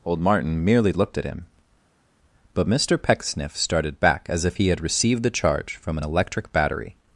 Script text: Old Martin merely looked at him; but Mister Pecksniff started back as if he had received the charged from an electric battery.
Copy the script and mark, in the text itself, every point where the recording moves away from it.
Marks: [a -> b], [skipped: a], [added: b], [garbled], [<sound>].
Old Martin merely looked at him; but Mister Pecksniff started back as if he had received the [charged -> charge] from an electric battery.